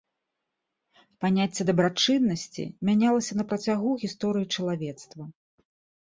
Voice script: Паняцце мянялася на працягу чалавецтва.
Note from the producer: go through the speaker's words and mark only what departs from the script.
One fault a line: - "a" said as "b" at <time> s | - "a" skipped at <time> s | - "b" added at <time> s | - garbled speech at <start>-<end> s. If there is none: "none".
- "дабрачыннасці" added at 1.7 s
- "гісторыі" added at 4.0 s